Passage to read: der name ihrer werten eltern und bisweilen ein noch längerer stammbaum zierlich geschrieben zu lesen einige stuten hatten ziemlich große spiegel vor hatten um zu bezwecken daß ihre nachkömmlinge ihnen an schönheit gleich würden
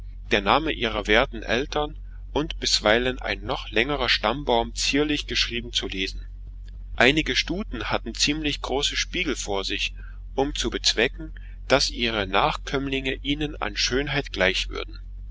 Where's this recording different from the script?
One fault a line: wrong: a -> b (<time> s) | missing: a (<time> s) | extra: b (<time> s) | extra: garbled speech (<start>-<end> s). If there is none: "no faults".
wrong: hatten -> sich (9.7 s)